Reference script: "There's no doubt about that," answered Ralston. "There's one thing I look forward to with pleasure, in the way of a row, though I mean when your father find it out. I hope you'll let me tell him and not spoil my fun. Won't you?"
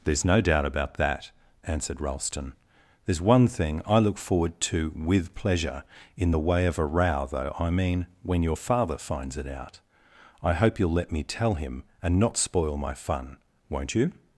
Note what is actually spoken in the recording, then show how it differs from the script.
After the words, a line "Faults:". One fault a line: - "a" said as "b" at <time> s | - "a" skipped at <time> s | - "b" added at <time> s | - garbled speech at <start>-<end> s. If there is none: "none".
"There's no doubt about that," answered Ralston. "There's one thing I look forward to with pleasure, in the way of a row, though I mean when your father finds it out. I hope you'll let me tell him and not spoil my fun. Won't you?"
Faults:
- "find" said as "finds" at 9.0 s